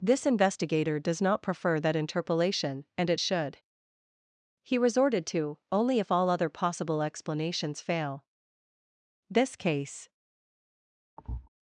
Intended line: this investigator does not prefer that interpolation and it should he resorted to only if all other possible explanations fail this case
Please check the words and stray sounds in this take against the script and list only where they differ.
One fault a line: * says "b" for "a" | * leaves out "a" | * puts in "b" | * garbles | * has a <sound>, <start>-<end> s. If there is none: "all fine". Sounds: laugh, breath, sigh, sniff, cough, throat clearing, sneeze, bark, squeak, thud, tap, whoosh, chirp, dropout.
* has a thud, 11.2-11.5 s